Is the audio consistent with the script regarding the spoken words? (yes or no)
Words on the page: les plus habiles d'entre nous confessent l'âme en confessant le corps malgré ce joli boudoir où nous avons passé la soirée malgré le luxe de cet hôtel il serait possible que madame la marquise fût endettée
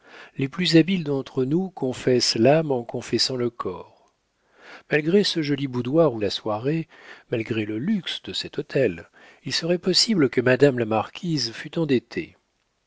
no